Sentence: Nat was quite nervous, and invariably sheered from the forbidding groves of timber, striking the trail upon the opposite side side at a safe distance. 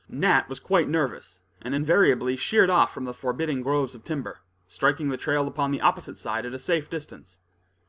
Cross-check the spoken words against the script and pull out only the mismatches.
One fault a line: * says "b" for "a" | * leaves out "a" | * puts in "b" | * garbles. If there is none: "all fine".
* puts in "off"
* leaves out "side"